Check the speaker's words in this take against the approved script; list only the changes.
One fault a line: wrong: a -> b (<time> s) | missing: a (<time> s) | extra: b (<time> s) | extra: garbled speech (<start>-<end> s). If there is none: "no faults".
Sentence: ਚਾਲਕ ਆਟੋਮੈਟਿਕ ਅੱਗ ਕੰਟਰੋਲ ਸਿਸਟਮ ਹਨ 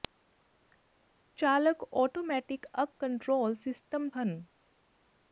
no faults